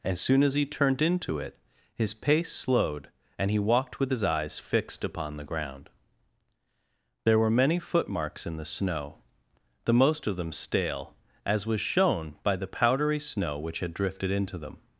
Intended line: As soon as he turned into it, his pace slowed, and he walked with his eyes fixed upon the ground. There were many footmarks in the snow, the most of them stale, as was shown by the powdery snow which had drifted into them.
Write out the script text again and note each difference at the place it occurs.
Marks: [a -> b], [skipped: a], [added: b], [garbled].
As soon as he turned into it, his pace slowed, and he walked with his eyes fixed upon the ground. There were many footmarks in the snow, the most of them stale, as was shown by the powdery snow which had drifted into them.